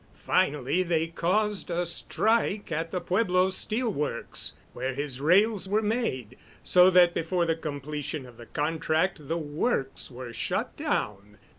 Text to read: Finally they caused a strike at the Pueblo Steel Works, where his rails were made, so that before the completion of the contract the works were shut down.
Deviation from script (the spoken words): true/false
false